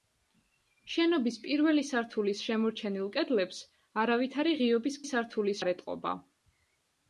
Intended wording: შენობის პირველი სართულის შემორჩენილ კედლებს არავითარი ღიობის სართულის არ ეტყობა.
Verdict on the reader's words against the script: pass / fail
pass